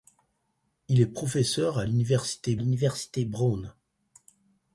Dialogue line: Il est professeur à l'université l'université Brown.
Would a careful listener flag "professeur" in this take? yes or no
no